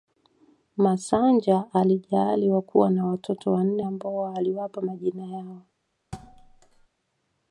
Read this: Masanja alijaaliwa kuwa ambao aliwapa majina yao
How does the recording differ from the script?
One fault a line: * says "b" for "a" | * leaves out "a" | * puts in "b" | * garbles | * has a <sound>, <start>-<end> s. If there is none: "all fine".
* puts in "na watoto wanne"
* has a thud, 6.1-6.9 s